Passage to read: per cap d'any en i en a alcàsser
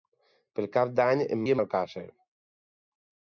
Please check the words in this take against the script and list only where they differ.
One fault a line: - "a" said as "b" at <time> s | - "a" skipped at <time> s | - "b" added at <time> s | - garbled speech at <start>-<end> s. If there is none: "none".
none